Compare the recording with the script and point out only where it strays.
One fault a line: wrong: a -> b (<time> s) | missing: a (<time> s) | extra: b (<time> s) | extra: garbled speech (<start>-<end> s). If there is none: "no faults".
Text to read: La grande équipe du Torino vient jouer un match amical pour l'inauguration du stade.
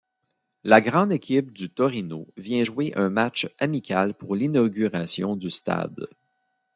no faults